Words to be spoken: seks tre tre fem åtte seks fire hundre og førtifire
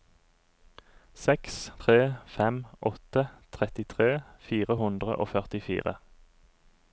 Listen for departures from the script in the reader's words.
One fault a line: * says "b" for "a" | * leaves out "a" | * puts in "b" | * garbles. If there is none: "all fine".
* leaves out "tre"
* says "trettitre" for "seks"